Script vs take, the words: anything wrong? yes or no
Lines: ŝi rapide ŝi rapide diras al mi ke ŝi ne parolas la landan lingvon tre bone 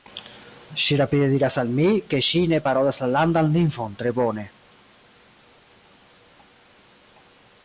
yes